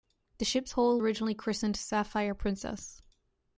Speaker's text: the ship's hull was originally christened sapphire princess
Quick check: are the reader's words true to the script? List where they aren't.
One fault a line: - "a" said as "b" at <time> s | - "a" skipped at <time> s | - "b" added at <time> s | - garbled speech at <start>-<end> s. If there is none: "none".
- "was" skipped at 1.0 s